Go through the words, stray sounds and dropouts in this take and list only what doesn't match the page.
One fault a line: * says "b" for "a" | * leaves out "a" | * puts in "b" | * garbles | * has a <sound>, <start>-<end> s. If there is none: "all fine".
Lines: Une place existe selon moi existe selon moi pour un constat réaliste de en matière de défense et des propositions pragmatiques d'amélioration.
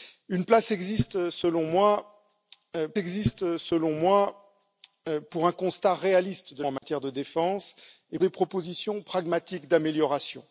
* has a dropout, 6.8-6.8 s